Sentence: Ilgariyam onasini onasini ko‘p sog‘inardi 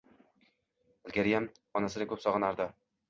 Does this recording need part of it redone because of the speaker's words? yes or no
yes